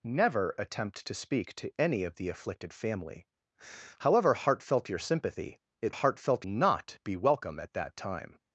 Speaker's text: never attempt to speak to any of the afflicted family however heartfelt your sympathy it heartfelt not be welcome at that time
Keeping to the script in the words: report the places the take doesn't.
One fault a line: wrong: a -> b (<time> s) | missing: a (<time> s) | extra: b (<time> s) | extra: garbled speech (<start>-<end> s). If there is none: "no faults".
no faults